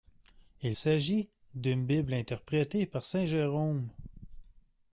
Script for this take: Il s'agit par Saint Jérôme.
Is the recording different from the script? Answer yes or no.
yes